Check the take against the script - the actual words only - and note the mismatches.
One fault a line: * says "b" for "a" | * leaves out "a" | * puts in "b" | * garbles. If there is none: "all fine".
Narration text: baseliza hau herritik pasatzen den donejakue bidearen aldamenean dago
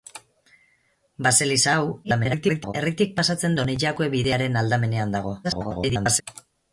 * garbles
* leaves out "den"
* garbles